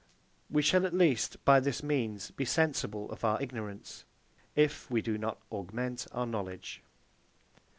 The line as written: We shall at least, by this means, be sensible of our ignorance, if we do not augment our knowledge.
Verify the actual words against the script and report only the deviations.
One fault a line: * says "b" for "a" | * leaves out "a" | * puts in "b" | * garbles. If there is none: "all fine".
all fine